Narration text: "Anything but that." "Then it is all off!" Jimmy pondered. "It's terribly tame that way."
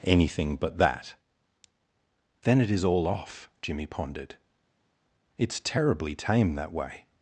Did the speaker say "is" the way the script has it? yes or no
yes